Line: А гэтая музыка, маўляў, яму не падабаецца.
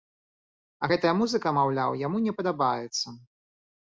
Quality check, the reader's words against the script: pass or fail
pass